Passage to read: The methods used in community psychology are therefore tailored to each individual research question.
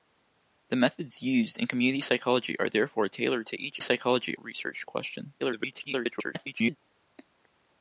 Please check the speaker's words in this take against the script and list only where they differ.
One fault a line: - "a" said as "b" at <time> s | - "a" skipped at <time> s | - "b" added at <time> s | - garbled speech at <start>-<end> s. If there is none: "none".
- "individual" said as "psychology" at 3.8 s
- garbled speech at 5.4-6.8 s